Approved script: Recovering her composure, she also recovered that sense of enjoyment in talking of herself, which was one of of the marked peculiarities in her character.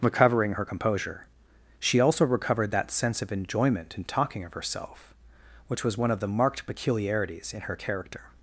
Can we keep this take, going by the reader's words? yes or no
no